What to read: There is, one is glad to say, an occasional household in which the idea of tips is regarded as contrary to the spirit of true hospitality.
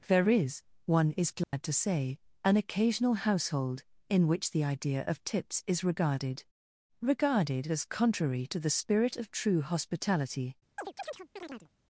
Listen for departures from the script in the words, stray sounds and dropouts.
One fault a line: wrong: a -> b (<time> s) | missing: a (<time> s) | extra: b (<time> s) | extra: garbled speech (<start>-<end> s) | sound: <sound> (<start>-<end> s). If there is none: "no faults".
sound: dropout (1.4-1.5 s)
extra: regarded (7.0 s)
sound: chirp (10.8-11.7 s)